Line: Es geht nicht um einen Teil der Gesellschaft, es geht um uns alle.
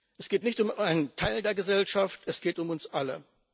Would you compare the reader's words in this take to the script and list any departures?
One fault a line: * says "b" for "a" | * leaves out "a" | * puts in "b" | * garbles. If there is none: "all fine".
all fine